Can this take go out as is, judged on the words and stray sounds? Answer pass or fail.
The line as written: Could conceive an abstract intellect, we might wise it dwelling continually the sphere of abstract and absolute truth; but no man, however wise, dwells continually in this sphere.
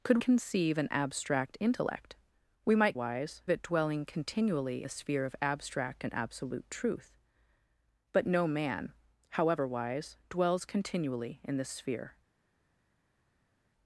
pass